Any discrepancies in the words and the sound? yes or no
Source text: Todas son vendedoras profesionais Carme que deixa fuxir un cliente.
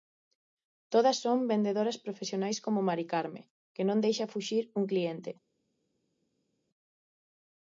yes